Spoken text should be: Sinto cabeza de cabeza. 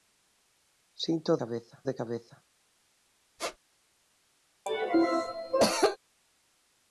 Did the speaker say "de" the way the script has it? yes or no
yes